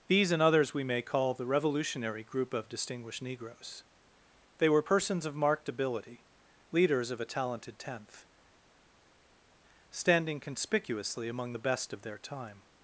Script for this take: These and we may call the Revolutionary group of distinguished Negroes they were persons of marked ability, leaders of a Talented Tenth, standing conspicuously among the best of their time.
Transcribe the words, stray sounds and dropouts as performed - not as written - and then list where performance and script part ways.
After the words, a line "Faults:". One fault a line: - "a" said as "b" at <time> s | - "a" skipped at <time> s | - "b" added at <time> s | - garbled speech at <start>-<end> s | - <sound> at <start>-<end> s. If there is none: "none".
These and others we may call the Revolutionary group of distinguished Negroes they were persons of marked ability, leaders of a Talented Tenth, standing conspicuously among the best of their time.
Faults:
- "others" added at 0.4 s